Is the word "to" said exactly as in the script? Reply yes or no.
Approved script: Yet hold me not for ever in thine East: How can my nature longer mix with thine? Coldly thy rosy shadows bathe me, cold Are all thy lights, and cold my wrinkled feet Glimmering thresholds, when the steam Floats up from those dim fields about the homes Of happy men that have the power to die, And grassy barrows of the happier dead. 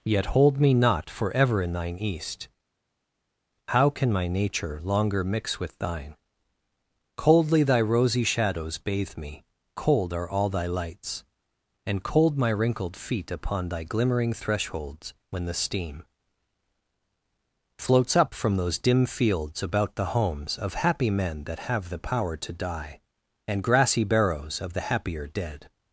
yes